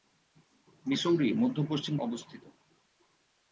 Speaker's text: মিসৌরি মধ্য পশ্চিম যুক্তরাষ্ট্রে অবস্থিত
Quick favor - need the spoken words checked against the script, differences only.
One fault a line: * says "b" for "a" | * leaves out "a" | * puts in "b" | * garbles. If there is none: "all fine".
* leaves out "যুক্তরাষ্ট্রে"